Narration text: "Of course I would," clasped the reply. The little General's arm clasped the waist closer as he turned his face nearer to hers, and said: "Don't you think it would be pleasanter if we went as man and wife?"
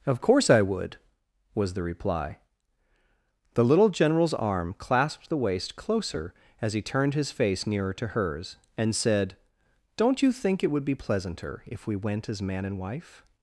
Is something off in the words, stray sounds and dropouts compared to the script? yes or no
yes